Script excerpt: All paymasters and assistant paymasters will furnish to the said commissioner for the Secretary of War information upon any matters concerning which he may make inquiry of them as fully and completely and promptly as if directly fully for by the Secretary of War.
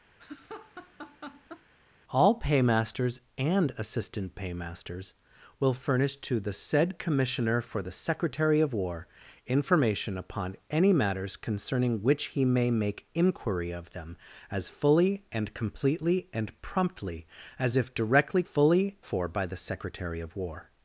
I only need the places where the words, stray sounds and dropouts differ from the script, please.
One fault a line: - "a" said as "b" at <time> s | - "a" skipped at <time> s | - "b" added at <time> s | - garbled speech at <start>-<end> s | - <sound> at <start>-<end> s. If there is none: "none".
- laugh at 0.2-1.7 s